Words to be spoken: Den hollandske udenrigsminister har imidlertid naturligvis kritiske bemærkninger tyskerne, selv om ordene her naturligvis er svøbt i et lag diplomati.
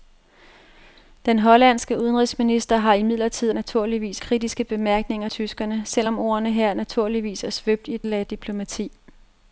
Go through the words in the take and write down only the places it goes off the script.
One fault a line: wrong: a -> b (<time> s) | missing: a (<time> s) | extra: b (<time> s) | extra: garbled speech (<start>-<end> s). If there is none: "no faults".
no faults